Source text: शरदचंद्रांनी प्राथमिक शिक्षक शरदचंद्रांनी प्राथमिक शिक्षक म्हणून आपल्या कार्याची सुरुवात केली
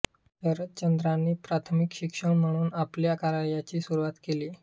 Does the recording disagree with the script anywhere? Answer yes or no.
yes